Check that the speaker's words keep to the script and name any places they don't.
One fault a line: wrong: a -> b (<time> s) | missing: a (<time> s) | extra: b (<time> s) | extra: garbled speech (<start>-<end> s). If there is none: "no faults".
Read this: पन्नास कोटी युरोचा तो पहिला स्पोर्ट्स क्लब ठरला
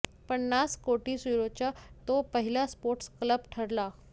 no faults